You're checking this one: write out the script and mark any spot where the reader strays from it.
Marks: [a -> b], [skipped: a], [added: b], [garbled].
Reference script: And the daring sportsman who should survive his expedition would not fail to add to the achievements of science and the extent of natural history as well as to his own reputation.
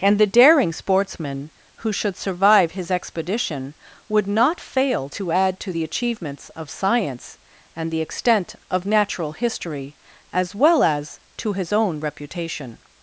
And the daring sportsman who should survive his expedition would not fail to add to the achievements of science and the extent of natural history as well as to his own reputation.